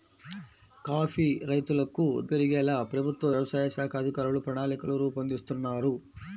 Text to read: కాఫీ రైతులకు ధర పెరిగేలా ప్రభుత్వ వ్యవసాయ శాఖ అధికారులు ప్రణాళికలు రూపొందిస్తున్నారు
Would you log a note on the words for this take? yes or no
yes